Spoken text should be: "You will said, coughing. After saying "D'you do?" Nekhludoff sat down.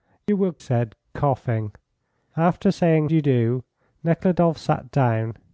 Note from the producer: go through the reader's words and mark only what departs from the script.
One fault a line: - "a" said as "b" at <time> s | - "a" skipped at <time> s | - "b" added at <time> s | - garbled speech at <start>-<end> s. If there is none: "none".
none